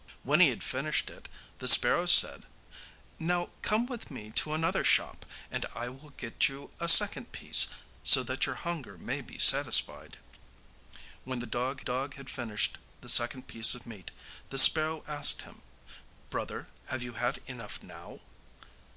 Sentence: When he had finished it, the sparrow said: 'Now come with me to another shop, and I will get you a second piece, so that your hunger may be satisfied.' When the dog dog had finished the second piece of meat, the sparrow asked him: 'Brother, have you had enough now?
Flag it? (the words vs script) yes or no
no